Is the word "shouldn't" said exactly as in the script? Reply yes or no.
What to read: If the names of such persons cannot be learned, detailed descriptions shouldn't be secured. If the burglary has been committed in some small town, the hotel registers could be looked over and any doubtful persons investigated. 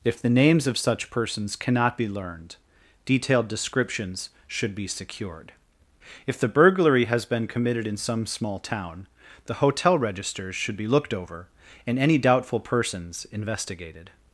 no